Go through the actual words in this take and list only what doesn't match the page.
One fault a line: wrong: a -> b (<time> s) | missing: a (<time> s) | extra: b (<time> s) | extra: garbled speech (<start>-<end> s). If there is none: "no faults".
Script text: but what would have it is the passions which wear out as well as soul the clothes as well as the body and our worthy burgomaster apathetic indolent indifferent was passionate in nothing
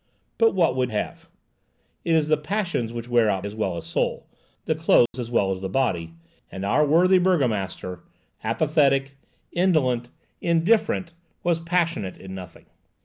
no faults